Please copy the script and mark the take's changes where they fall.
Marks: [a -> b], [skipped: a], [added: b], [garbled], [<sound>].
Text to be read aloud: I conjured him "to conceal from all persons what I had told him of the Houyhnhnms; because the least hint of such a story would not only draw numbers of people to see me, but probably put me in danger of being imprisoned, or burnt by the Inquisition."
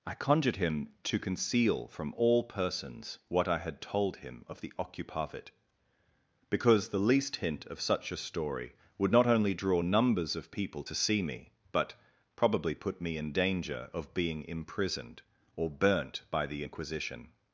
I conjured him "to conceal from all persons what I had told him of the [Houyhnhnms; -> Occupavit] because the least hint of such a story would not only draw numbers of people to see me, but probably put me in danger of being imprisoned, or burnt by the Inquisition."